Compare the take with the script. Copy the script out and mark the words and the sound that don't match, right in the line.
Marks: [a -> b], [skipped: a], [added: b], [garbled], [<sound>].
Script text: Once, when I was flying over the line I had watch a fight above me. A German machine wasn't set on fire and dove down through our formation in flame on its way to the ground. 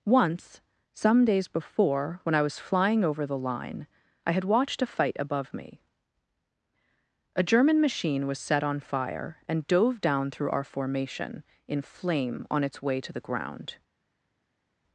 Once, [added: some days before] when I was flying over the line I had [watch -> watched] a fight above me. A German machine [wasn't -> was] set on fire and dove down through our formation in flame on its way to the ground.